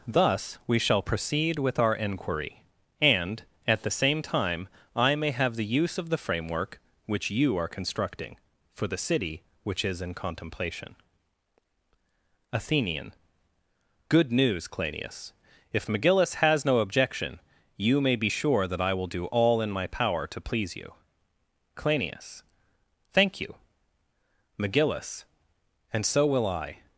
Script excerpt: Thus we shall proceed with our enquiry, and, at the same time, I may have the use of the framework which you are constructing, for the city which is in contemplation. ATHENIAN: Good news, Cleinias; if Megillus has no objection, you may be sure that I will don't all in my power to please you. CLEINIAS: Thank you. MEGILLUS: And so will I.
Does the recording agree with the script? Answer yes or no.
no